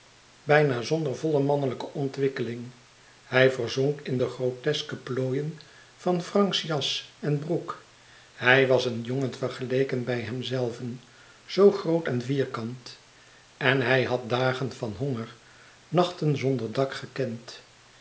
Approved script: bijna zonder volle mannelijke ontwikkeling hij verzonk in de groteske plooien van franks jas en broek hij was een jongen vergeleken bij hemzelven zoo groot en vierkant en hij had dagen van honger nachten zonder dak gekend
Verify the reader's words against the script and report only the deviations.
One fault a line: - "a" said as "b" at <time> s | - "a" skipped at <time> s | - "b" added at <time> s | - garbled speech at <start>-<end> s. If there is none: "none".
none